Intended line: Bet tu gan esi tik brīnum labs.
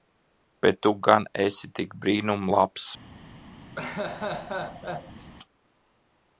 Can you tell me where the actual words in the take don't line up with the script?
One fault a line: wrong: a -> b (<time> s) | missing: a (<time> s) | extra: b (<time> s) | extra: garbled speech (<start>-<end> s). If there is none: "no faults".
no faults